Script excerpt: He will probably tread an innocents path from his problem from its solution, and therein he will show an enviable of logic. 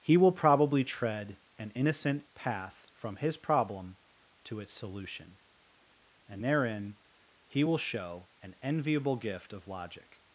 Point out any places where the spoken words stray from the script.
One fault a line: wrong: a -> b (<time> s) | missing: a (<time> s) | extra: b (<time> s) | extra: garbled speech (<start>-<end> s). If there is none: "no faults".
wrong: innocents -> innocent (1.8 s)
wrong: from -> to (4.5 s)
extra: gift (9.2 s)